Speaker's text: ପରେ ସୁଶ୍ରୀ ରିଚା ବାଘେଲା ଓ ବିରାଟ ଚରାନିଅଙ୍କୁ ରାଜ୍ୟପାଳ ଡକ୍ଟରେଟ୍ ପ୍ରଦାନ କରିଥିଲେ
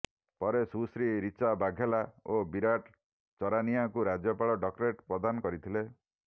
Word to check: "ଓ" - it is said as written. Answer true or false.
true